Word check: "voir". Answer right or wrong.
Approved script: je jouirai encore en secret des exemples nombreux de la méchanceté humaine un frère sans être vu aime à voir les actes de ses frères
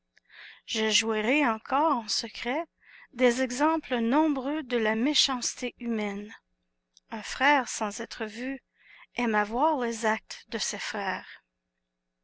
right